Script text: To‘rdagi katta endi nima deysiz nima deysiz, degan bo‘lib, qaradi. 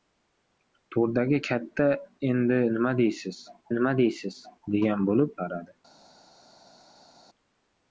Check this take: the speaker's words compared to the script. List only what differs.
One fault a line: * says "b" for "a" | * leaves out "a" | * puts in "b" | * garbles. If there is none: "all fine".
all fine